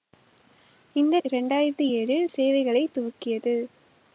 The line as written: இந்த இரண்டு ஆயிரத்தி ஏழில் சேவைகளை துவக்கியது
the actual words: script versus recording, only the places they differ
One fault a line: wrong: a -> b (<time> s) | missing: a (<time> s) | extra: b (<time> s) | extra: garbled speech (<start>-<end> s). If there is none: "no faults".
no faults